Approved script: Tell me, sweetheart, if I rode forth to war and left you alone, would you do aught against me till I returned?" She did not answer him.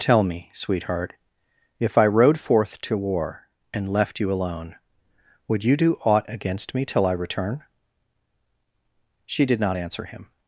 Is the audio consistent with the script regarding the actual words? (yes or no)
no